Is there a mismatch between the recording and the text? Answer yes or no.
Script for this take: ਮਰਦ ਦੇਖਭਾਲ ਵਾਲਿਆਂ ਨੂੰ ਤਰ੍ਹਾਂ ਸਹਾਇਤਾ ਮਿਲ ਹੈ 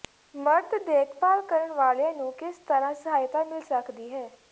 yes